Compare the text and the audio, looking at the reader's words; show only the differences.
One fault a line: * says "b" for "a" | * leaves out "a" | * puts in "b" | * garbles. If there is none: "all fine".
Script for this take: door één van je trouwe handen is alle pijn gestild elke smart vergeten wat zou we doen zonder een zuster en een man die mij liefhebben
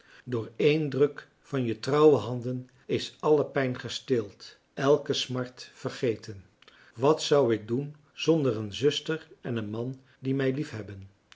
* puts in "druk"
* says "ik" for "we"